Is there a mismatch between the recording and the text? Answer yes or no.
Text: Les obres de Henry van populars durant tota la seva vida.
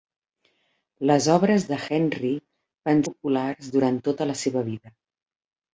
no